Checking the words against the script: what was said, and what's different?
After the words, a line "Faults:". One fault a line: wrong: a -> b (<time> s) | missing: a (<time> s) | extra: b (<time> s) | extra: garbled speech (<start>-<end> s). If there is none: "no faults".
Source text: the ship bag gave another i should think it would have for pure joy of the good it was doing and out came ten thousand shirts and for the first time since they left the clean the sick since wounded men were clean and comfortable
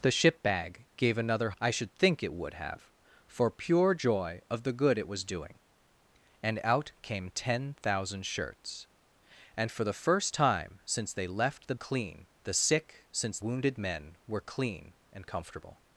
the ship bag gave another i should think it would have for pure joy of the good it was doing and out came ten thousand shirts and for the first time since they left the clean the sick since wounded men were clean and comfortable
Faults:
no faults